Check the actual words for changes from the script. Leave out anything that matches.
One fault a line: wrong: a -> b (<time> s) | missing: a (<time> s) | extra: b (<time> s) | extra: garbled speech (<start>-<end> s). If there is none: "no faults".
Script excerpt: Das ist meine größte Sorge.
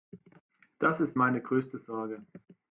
no faults